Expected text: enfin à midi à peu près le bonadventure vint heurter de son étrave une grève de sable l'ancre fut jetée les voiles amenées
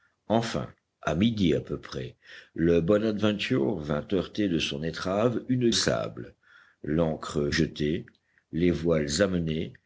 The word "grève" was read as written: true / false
false